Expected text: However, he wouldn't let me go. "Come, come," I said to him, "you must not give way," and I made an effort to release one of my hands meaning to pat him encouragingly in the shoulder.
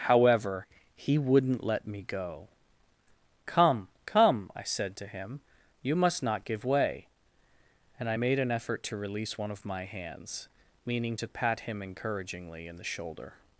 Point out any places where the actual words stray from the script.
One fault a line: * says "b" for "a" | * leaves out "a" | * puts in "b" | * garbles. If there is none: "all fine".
all fine